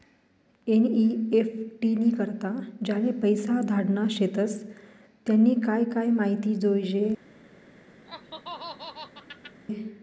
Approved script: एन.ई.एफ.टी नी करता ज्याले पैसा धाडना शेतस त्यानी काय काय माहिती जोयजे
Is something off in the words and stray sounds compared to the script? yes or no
yes